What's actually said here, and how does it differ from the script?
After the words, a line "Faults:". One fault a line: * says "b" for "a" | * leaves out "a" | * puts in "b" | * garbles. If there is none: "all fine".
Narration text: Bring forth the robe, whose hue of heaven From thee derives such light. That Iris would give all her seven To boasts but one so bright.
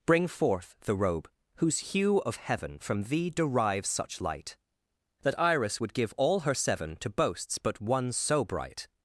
Bring forth the robe, whose hue of heaven From thee derives such light. That Iris would give all her seven To boasts but one so bright.
Faults:
all fine